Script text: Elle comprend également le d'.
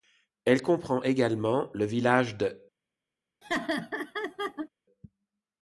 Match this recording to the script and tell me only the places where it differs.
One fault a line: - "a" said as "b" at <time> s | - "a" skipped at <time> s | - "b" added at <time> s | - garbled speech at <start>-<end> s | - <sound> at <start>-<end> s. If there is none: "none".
- "village" added at 1.8 s
- laugh at 3.4-4.7 s